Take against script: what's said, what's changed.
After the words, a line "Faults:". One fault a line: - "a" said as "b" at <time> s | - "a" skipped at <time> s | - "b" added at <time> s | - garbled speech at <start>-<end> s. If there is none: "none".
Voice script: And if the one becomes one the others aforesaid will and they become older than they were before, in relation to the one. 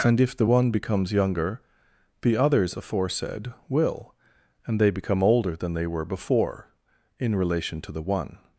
And if the one becomes younger the others aforesaid will and they become older than they were before, in relation to the one.
Faults:
- "one" said as "younger" at 1.1 s